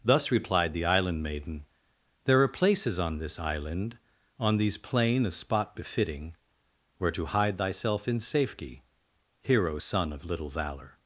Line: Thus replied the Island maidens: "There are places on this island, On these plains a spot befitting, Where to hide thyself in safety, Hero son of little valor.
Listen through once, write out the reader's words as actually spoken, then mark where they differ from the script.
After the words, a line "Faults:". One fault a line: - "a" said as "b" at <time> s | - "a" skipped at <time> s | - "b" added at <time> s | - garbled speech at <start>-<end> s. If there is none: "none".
Thus replied the Island maiden: "There are places on this island, On these plain a spot befitting, Where to hide thyself in safety, Hero son of little valor.
Faults:
- "maidens" said as "maiden" at 1.2 s
- "plains" said as "plain" at 4.8 s